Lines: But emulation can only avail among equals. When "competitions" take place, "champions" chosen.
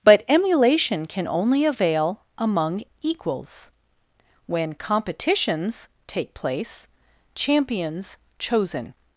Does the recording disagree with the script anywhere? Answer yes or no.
no